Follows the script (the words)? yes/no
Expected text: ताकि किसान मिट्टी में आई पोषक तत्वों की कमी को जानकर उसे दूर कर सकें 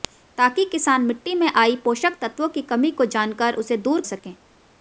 no